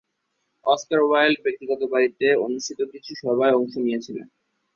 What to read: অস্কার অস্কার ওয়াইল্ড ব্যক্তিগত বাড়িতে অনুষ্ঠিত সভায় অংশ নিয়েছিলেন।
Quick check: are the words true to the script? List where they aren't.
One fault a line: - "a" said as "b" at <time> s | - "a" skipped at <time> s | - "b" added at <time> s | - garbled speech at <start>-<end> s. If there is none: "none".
- "অস্কার" skipped at 1.0 s
- "কিছু" added at 2.9 s